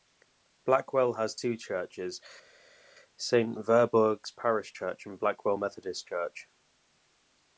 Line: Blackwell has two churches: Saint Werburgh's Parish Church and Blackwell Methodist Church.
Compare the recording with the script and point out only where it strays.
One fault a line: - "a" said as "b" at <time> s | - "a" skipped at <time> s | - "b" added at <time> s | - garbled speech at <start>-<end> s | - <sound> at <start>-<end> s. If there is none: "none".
none